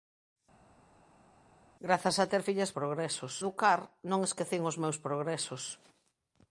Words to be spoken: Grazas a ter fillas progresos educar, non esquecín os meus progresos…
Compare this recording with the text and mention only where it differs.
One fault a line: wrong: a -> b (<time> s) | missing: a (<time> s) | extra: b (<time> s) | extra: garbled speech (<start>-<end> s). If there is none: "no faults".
no faults